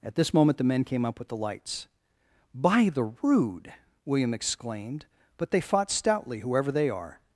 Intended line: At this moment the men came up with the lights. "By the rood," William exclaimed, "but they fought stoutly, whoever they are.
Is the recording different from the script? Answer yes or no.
no